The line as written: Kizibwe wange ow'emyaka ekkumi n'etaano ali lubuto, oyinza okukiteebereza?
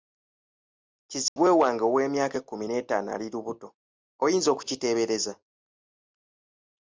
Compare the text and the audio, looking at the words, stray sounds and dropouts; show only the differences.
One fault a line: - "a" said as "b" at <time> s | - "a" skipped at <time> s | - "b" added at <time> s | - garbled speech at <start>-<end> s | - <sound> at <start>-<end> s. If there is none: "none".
- dropout at 1.3-1.4 s